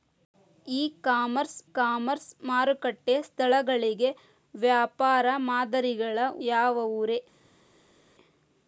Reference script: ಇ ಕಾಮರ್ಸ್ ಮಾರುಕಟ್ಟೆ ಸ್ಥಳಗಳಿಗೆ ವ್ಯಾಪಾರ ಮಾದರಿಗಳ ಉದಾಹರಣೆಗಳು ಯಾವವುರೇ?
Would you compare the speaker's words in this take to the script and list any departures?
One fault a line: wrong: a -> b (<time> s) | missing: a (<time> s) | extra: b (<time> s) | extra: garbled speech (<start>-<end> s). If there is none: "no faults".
extra: ಕಾಮರ್ಸ್ (1.7 s)
missing: ಉದಾಹರಣೆಗಳು (6.2 s)